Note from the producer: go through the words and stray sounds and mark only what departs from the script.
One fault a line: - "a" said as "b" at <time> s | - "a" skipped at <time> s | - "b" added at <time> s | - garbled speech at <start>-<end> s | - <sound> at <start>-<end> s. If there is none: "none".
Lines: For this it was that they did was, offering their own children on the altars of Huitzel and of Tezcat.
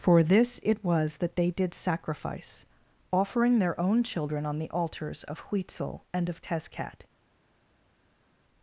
- "was" said as "sacrifice" at 1.7 s